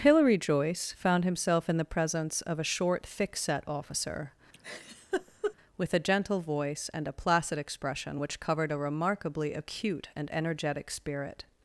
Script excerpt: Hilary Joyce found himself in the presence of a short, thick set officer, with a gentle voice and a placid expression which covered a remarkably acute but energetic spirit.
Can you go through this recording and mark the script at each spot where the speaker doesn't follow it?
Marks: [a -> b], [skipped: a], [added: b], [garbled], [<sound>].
Hilary Joyce found himself in the presence of a short, thick set officer, [laugh] with a gentle voice and a placid expression which covered a remarkably acute [but -> and] energetic spirit.